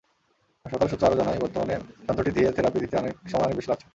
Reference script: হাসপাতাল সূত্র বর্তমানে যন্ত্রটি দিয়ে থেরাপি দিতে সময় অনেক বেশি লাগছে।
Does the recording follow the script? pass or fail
fail